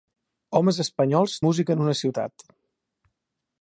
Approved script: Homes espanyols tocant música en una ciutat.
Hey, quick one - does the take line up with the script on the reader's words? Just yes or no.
no